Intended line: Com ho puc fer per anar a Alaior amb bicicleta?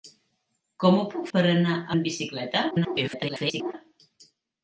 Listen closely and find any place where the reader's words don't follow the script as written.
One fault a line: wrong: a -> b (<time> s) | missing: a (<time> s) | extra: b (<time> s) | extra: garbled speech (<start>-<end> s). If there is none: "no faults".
missing: fer (1.3 s)
missing: Alaior (2.0 s)
extra: garbled speech (2.7-3.7 s)